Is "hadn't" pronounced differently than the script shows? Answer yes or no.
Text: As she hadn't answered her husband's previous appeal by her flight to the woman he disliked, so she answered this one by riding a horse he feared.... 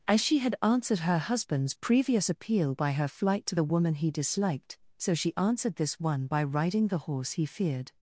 yes